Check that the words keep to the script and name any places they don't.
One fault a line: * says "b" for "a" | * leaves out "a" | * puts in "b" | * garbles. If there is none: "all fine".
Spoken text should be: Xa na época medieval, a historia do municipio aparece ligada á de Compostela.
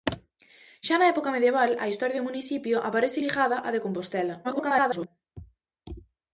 * garbles